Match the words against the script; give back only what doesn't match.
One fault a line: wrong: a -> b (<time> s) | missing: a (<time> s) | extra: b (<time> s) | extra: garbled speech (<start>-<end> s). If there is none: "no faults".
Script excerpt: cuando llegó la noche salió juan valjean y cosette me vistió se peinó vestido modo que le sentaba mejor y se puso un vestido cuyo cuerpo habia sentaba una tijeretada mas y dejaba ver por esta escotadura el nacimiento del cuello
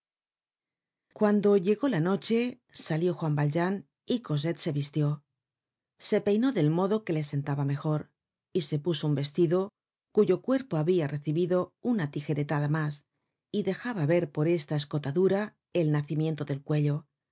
wrong: me -> se (4.6 s)
wrong: vestido -> del (6.5 s)
wrong: sentaba -> recibido (11.1 s)